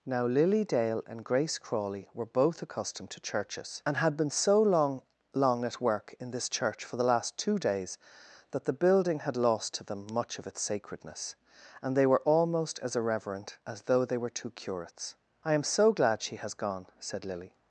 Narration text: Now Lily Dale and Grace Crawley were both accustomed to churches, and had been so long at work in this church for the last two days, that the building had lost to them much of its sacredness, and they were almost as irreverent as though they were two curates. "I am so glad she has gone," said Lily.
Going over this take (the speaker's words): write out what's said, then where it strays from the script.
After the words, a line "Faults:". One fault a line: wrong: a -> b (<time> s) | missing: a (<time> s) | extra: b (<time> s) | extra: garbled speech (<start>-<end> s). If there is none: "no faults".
Now Lily Dale and Grace Crawley were both accustomed to churches, and had been so long long at work in this church for the last two days, that the building had lost to them much of its sacredness, and they were almost as irreverent as though they were two curates. "I am so glad she has gone," said Lily.
Faults:
extra: long (5.3 s)